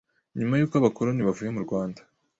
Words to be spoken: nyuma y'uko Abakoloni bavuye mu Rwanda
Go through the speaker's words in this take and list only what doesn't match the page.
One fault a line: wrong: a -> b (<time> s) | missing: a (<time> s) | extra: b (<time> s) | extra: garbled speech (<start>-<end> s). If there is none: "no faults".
no faults